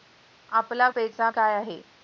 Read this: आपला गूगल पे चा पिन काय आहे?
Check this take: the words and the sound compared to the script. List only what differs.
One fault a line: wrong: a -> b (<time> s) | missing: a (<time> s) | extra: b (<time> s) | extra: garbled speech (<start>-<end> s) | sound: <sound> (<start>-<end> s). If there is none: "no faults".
missing: गूगल (0.9 s)
missing: पिन (1.3 s)